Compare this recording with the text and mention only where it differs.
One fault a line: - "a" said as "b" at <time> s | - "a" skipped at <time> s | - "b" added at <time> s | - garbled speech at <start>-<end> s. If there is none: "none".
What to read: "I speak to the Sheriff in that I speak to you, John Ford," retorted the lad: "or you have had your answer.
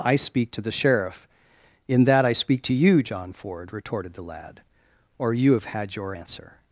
none